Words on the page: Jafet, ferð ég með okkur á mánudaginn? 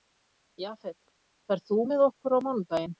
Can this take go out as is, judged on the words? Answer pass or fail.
fail